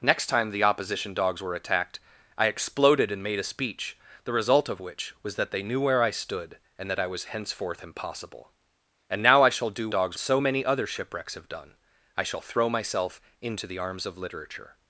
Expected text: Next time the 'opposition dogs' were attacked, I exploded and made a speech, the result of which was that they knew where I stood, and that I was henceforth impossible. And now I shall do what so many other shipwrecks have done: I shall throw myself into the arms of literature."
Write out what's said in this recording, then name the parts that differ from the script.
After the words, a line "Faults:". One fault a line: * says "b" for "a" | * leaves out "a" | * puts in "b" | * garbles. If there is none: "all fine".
Next time the 'opposition dogs' were attacked, I exploded and made a speech, the result of which was that they knew where I stood, and that I was henceforth impossible. And now I shall do dogs so many other shipwrecks have done: I shall throw myself into the arms of literature."
Faults:
* says "dogs" for "what"